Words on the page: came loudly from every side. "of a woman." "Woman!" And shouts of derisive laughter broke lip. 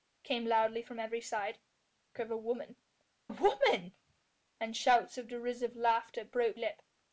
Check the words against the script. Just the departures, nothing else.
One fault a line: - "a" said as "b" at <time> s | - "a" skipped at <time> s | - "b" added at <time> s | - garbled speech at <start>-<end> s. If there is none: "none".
none